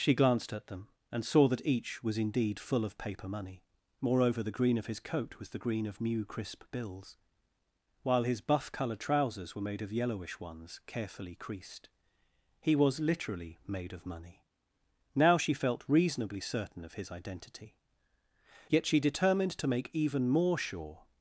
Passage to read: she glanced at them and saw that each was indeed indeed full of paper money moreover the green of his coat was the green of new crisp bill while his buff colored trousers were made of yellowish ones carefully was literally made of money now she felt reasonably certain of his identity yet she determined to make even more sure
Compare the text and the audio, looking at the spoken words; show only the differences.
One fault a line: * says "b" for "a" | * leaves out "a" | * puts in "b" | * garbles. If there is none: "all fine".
* leaves out "indeed"
* says "bills" for "bill"
* puts in "creased he"